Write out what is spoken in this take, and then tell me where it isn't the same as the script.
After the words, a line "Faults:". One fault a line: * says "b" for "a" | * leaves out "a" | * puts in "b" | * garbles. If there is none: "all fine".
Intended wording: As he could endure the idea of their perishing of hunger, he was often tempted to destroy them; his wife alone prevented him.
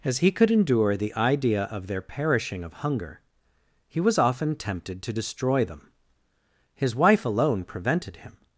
As he could endure the idea of their perishing of hunger, he was often tempted to destroy them; his wife alone prevented him.
Faults:
all fine